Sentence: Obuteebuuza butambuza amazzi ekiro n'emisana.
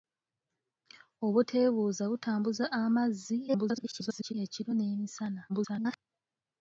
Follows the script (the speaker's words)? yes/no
no